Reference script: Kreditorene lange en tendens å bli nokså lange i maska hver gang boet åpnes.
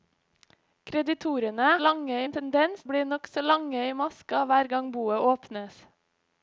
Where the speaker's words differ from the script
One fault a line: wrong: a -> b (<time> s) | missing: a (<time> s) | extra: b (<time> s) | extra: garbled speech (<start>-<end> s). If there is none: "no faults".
no faults